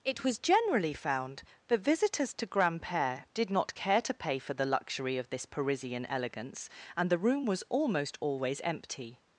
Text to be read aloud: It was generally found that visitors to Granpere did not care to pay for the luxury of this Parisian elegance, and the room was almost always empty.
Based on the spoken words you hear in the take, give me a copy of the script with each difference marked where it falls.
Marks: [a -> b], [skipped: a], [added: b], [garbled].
It was generally found that visitors to Granpere did not care to pay for the luxury of this Parisian elegance, and the room was almost always empty.